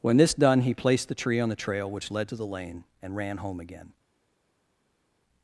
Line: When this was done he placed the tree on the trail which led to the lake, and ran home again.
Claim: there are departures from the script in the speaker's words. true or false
true